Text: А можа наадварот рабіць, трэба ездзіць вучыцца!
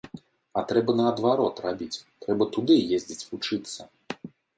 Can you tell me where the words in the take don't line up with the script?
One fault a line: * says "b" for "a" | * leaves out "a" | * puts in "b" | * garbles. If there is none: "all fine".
* says "трэба" for "можа"
* puts in "туды"